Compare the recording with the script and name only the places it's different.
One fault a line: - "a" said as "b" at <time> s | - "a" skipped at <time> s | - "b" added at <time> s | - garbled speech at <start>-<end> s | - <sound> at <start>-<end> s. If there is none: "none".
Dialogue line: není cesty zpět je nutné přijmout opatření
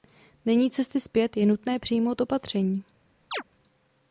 - chirp at 3.3-3.4 s